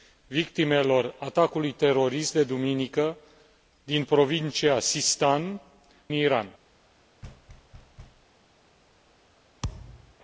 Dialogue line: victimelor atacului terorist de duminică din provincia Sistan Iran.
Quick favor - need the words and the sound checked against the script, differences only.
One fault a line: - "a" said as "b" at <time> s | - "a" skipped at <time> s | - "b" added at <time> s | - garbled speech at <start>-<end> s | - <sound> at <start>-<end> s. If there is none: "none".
- thud at 7.2-8.3 s
- thud at 9.6-10.1 s